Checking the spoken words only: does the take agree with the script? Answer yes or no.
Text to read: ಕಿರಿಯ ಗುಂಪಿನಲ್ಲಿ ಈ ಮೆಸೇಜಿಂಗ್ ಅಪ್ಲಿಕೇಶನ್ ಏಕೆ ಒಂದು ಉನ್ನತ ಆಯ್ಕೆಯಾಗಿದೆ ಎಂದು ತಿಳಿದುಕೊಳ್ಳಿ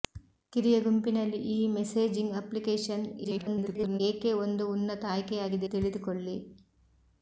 no